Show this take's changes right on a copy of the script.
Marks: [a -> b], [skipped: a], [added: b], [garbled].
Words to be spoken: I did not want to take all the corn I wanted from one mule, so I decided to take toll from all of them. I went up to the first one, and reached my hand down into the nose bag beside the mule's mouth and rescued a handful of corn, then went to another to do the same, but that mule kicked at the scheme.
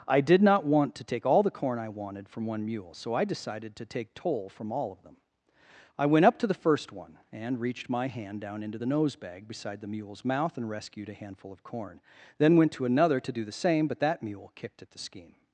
I did not want to take all the corn I wanted from one mule, so I decided to take toll from all of them. I went up to the first one, and reached my hand down into the nose bag beside the mule's mouth and rescued a handful of corn, then went to another to do the same, but that mule kicked at the scheme.